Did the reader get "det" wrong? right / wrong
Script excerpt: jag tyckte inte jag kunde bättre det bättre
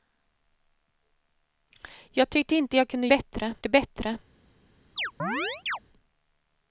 right